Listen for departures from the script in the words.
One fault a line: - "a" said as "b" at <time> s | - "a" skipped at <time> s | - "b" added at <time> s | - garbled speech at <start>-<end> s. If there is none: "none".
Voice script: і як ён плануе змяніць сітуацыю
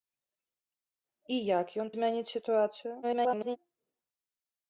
- "плануе" skipped at 1.9 s
- garbled speech at 3.0-3.6 s